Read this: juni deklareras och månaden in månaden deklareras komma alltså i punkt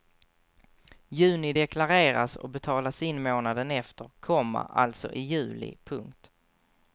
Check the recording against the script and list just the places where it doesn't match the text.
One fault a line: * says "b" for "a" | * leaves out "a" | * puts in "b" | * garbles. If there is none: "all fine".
* says "betalas" for "månaden"
* says "efter" for "deklareras"
* puts in "juli"